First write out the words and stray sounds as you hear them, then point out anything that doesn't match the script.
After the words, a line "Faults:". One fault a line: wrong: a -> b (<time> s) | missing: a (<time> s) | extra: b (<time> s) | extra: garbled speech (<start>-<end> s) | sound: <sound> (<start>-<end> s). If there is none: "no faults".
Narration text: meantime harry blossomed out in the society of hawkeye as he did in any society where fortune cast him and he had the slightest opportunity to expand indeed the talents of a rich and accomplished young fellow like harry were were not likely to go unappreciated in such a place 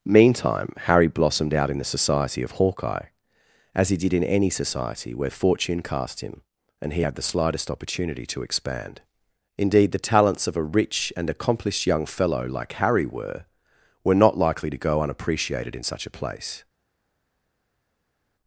meantime harry blossomed out in the society of hawkeye as he did in any society where fortune cast him and he had the slightest opportunity to expand indeed the talents of a rich and accomplished young fellow like harry were were not likely to go unappreciated in such a place
Faults:
no faults